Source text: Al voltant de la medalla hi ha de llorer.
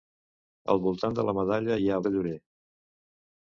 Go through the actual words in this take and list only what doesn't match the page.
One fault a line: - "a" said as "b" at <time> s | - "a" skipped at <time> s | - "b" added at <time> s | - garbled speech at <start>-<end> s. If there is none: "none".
none